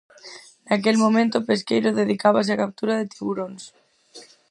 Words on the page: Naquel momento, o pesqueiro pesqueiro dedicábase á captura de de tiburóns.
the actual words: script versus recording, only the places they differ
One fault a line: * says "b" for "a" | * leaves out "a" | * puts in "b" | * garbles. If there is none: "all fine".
* leaves out "pesqueiro"
* leaves out "de"